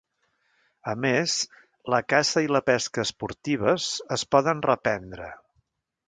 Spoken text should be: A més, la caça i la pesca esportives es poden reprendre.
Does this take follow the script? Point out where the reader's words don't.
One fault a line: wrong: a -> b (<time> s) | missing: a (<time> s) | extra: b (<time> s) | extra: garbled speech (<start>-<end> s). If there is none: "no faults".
no faults